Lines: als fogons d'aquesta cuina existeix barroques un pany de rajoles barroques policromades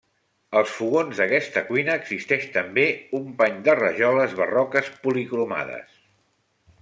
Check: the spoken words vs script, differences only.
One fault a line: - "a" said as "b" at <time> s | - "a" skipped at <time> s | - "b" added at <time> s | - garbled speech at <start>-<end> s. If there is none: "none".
- "barroques" said as "també" at 2.6 s